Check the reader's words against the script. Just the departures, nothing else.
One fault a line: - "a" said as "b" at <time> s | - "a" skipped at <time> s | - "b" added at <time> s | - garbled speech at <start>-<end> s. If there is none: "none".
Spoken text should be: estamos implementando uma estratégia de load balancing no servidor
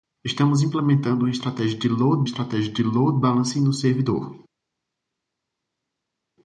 - "estratégia de load" added at 2.2 s